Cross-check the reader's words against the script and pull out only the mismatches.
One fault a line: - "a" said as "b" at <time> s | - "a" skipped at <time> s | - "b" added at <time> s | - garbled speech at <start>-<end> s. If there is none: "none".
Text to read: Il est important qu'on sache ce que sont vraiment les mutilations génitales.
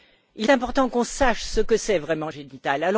- "est" skipped at 0.5 s
- "les mutilations" skipped at 2.3 s